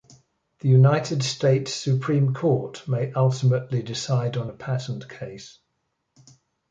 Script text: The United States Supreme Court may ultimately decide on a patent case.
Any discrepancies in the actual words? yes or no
no